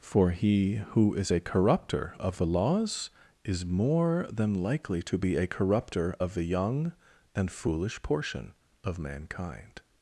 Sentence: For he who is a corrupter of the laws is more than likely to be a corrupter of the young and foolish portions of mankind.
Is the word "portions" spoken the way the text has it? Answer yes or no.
no